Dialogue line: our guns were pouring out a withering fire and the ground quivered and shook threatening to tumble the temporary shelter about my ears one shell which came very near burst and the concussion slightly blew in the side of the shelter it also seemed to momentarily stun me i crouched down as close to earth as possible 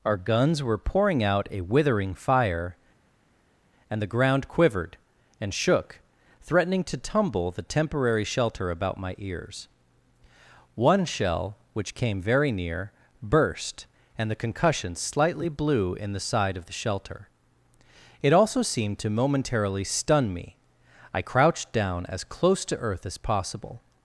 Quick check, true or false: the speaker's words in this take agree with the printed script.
true